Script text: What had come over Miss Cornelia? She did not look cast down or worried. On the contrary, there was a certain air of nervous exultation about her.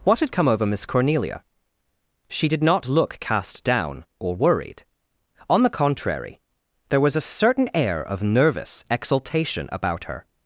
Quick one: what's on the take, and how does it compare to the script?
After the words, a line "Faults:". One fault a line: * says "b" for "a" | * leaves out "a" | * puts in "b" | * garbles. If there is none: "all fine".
What had come over Miss Cornelia? She did not look cast down or worried. On the contrary, there was a certain air of nervous exultation about her.
Faults:
all fine